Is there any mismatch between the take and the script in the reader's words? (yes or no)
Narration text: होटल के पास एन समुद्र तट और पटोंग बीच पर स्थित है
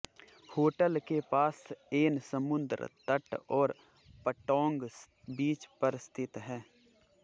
no